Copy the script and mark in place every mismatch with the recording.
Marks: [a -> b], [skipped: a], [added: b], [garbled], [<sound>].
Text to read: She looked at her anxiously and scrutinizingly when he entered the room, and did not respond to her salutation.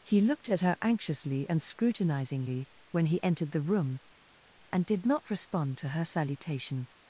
[She -> He] looked at her anxiously and scrutinizingly when he entered the room, and did not respond to her salutation.